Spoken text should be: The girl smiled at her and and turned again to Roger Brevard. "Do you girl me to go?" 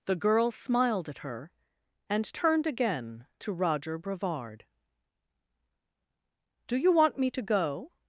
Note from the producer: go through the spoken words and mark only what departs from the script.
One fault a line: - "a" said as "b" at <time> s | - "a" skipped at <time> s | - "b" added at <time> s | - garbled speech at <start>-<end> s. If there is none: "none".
- "and" skipped at 2.3 s
- "girl" said as "want" at 6.9 s